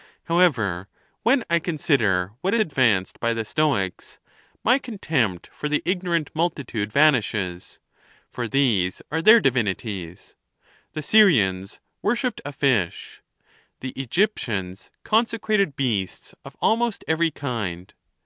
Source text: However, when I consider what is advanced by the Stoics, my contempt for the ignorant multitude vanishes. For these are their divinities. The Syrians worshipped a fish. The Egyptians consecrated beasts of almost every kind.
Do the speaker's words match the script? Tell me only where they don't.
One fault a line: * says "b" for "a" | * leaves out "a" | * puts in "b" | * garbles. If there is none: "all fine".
* leaves out "is"